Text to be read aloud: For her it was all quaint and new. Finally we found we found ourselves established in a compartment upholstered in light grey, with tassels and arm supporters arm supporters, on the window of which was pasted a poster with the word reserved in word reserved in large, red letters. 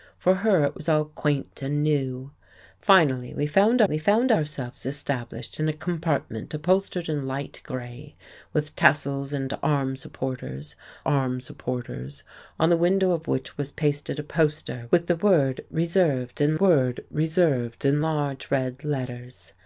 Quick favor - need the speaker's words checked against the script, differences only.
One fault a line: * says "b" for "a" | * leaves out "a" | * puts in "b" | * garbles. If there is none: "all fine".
all fine